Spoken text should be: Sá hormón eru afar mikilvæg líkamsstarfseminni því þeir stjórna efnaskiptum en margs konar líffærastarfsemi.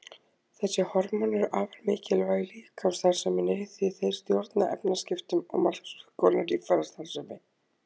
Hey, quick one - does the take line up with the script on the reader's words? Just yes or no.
no